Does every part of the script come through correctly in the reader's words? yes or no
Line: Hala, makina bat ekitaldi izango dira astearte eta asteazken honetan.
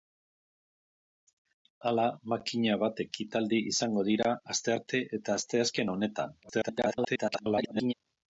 no